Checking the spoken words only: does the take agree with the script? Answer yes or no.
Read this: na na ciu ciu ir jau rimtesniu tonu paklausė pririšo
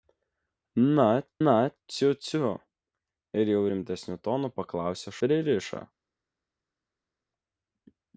yes